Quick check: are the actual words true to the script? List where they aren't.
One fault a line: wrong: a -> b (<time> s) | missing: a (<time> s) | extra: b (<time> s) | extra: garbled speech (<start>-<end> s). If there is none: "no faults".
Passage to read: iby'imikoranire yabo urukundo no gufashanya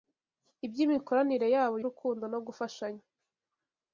no faults